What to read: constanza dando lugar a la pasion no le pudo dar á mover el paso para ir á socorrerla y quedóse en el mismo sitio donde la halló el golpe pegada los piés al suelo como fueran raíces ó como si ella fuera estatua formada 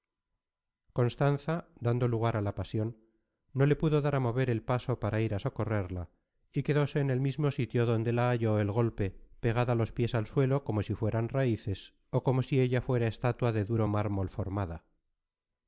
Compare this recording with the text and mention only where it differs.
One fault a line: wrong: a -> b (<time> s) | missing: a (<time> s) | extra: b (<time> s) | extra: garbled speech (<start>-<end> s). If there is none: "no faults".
extra: si (10.8 s)
extra: de duro mármol (13.5 s)